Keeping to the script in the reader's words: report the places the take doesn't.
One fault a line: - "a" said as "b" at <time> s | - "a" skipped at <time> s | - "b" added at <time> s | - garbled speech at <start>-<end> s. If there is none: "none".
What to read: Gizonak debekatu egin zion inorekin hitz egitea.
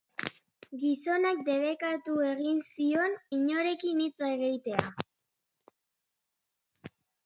none